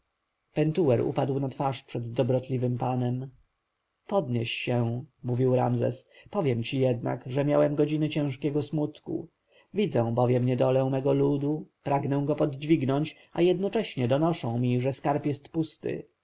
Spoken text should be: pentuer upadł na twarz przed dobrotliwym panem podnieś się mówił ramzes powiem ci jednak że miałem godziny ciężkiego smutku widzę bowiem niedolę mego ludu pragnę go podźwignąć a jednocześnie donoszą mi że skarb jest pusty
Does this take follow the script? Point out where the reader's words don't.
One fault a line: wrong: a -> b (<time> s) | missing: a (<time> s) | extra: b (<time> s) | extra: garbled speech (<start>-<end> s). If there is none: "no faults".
no faults